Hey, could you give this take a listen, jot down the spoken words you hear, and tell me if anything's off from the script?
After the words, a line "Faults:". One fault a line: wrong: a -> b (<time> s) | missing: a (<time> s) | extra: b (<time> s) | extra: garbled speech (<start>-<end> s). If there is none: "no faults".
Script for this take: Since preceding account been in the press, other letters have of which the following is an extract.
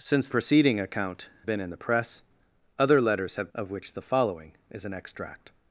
Since preceding account been in the press, other letters have of which the following is an extract.
Faults:
no faults